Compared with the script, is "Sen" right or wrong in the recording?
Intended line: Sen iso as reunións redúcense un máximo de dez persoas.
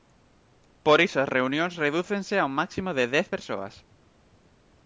wrong